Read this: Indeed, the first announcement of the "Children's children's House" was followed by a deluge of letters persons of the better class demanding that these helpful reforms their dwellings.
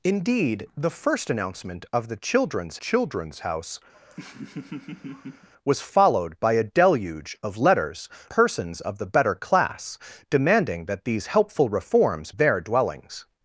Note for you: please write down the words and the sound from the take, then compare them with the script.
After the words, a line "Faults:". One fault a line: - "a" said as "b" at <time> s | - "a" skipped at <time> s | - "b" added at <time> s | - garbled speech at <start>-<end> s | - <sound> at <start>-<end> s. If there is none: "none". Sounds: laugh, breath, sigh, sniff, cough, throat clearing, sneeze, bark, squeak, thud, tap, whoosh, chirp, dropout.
Indeed, the first announcement of the "Children's children's House" was followed by a deluge of letters persons of the better class demanding that these helpful reforms their dwellings.
Faults:
- laugh at 3.9-5.5 s